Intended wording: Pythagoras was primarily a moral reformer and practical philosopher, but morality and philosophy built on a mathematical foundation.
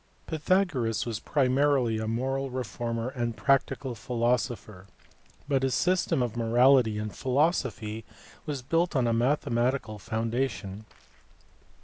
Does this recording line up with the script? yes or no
no